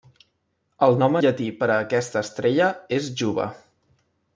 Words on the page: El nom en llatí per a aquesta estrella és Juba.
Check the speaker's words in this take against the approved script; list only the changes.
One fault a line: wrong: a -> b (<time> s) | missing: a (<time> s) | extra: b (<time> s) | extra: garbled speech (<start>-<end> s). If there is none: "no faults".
missing: en (1.2 s)